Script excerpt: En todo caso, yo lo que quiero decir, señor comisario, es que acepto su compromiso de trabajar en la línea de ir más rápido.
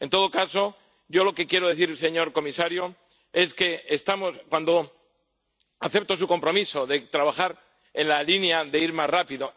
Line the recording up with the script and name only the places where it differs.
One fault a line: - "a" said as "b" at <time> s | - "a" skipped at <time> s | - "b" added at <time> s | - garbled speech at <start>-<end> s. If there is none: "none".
none